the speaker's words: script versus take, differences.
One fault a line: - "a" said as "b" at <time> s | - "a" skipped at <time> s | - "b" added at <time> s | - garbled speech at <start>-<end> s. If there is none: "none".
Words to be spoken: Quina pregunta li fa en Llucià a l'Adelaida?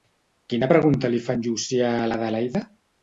none